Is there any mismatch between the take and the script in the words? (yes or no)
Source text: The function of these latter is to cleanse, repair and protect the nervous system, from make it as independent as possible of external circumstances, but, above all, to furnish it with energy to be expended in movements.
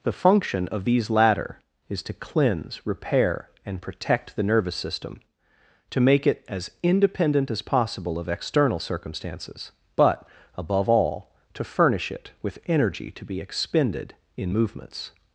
yes